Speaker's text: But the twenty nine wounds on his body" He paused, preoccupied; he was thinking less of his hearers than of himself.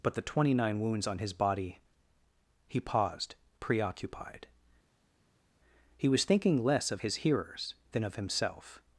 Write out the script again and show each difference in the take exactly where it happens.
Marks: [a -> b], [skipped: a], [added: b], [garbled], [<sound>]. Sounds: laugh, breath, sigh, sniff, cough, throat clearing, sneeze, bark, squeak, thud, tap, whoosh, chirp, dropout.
But the twenty nine wounds on his body" He paused, preoccupied; he was thinking less of his hearers than of himself.